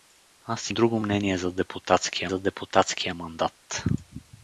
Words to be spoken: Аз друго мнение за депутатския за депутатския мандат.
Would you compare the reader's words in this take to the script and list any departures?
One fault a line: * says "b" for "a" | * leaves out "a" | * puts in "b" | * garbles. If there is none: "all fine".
all fine